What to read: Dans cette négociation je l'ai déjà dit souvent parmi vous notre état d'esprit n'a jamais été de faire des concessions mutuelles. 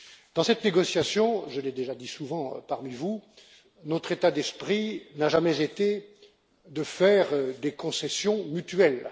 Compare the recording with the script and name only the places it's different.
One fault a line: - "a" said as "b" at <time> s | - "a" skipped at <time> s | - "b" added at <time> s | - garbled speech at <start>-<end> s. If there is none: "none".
none